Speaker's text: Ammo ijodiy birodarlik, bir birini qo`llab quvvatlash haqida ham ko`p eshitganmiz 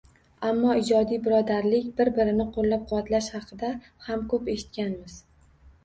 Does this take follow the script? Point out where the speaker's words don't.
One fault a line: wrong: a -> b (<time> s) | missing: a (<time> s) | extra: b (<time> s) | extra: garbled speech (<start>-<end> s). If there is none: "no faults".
no faults